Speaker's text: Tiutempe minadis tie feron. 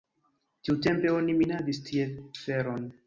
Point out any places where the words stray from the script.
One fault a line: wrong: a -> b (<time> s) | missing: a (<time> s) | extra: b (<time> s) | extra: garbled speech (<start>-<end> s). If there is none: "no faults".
extra: oni (1.2 s)